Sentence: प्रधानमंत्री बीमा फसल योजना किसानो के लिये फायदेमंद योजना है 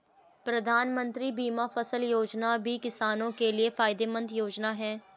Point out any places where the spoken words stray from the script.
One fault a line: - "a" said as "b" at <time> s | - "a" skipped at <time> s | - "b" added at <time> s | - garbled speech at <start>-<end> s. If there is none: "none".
- "भी" added at 2.6 s